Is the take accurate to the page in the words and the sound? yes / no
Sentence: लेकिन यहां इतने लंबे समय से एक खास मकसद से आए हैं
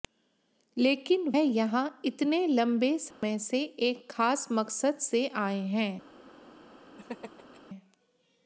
no